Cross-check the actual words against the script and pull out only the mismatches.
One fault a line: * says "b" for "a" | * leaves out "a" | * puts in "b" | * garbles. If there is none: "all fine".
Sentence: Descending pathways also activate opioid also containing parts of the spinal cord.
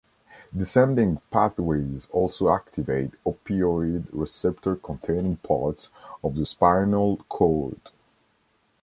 * says "receptor" for "also"